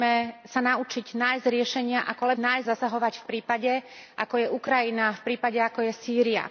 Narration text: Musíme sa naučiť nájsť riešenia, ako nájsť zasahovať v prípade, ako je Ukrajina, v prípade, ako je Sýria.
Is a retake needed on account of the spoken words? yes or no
no